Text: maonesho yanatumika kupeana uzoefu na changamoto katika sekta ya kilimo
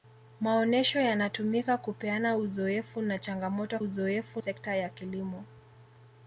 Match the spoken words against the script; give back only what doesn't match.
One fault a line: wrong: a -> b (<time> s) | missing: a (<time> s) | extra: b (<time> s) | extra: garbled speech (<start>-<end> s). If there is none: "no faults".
wrong: katika -> uzoefu (3.8 s)